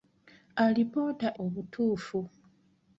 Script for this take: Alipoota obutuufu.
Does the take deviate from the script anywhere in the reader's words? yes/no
no